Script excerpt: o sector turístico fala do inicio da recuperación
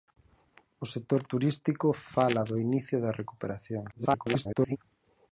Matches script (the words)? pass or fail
fail